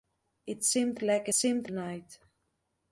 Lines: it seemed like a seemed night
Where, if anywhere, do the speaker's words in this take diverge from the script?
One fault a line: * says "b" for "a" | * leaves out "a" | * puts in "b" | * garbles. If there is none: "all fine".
all fine